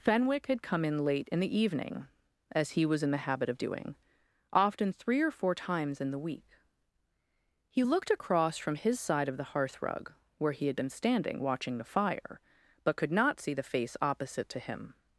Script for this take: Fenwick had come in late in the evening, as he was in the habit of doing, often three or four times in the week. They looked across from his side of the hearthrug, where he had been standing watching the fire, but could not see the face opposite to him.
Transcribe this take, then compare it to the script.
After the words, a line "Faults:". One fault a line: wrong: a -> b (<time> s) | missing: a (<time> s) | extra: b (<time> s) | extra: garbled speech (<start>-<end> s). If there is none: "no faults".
Fenwick had come in late in the evening, as he was in the habit of doing, often three or four times in the week. He looked across from his side of the hearthrug, where he had been standing watching the fire, but could not see the face opposite to him.
Faults:
wrong: They -> He (7.7 s)